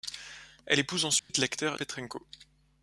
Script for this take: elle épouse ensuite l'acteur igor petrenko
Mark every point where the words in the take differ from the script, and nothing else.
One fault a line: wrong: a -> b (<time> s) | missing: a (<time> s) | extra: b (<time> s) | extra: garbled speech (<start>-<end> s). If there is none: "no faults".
missing: igor (1.8 s)